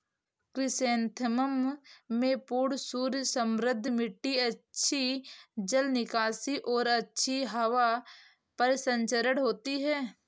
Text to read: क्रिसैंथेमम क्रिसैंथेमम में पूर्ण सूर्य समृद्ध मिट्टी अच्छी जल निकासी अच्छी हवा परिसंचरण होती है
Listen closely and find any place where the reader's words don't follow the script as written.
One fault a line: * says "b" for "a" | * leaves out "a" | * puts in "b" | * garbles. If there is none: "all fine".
* leaves out "क्रिसैंथेमम"
* puts in "और"